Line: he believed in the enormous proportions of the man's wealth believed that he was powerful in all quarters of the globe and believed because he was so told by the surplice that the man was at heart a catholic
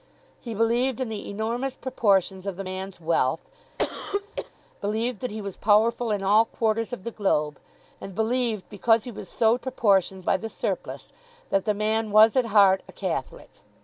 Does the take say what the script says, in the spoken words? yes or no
no